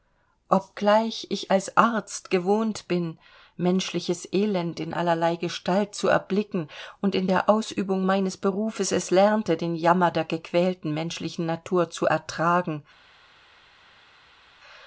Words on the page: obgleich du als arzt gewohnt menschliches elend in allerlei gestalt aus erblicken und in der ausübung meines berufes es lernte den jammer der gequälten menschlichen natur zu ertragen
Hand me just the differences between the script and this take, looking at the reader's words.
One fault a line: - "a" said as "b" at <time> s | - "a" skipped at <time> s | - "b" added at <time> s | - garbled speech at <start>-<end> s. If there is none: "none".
- "du" said as "ich" at 1.3 s
- "bin" added at 2.9 s
- "aus" said as "zu" at 5.9 s